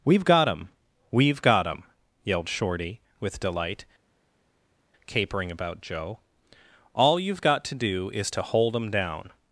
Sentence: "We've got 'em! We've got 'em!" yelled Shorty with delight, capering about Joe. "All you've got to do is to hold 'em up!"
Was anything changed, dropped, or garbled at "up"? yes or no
yes